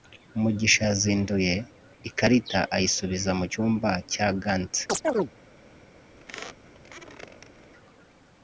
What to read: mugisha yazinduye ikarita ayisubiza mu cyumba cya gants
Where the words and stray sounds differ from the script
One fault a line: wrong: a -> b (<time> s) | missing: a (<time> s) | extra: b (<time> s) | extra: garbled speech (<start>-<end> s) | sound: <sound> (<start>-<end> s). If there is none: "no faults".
sound: chirp (4.9-5.3 s)
sound: squeak (6.2-7.7 s)